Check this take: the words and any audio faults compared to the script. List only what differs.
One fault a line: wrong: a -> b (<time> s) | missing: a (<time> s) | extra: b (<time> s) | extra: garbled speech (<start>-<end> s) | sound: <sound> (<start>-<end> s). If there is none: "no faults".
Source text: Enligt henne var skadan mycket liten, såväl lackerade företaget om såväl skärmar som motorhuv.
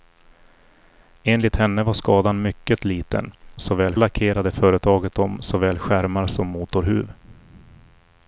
no faults